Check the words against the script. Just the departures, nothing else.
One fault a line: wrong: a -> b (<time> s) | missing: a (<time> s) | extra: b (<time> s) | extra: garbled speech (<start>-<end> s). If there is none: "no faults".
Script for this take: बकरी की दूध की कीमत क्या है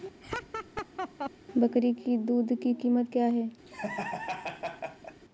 no faults